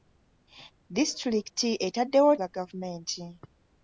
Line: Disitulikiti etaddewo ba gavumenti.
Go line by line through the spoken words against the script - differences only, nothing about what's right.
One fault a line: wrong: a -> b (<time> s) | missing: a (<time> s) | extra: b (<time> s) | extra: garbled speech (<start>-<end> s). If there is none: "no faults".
no faults